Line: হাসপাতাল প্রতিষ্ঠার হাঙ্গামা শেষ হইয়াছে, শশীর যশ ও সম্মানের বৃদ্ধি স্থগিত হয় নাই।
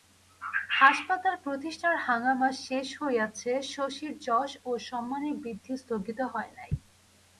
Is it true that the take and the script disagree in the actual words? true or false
false